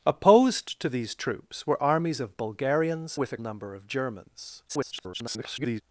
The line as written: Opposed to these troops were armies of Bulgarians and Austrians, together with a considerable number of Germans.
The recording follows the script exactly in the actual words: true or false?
false